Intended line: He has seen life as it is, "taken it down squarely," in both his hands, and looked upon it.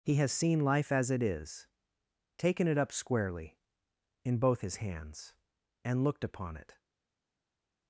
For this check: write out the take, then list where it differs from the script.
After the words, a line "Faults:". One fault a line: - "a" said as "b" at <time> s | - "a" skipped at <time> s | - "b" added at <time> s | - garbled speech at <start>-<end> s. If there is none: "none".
He has seen life as it is, "taken it up squarely," in both his hands, and looked upon it.
Faults:
- "down" said as "up" at 2.8 s